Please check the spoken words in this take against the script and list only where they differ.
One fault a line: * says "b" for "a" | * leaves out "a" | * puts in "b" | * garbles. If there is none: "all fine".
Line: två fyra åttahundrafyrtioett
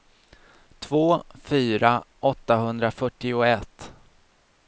all fine